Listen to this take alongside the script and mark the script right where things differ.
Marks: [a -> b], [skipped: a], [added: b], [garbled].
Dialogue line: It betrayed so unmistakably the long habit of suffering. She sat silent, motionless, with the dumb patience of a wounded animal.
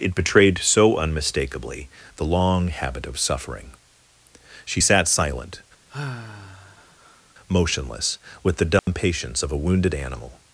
It betrayed so unmistakably the long habit of suffering. She sat silent, motionless, with the dumb patience of a wounded animal.